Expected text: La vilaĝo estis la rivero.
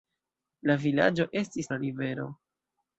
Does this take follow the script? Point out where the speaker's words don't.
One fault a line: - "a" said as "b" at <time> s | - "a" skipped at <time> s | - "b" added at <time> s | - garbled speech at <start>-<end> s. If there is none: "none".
none